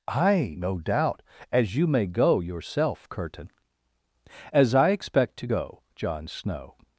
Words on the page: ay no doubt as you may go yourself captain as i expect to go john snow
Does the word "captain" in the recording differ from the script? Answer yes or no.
yes